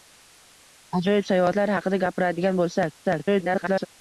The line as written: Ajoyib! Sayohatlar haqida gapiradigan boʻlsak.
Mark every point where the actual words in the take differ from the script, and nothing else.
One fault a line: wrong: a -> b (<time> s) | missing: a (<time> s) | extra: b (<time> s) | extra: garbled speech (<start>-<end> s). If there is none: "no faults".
extra: garbled speech (3.0-3.9 s)